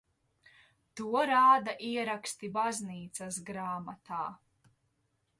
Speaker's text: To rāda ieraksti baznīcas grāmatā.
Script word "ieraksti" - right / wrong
right